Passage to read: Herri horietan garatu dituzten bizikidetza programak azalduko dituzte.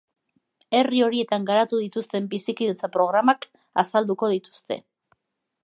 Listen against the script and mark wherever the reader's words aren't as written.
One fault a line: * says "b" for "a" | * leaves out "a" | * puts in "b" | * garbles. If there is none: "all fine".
all fine